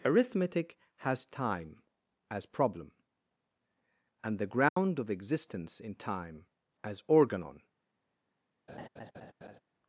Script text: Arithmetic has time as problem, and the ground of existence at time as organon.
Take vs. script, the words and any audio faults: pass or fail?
fail